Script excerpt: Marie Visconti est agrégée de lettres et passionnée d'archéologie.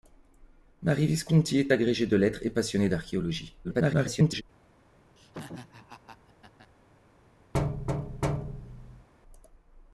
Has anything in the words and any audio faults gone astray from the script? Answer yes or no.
yes